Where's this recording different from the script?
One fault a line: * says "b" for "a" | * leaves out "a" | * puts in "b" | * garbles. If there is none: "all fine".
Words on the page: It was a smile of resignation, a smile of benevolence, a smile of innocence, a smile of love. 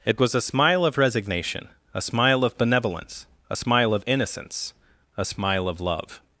all fine